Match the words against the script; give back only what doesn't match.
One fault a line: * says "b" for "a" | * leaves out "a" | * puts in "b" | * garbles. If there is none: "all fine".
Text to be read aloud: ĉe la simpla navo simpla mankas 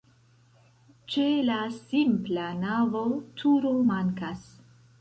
* says "turo" for "simpla"